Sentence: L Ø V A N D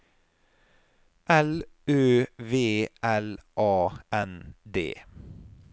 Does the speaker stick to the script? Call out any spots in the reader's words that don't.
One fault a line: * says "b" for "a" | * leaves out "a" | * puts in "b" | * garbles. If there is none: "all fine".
* puts in "L"